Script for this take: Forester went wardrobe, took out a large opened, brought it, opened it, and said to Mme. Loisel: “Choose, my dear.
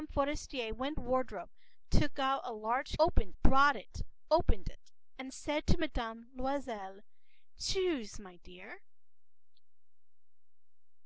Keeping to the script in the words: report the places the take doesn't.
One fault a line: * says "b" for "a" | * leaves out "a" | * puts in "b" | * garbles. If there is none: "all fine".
all fine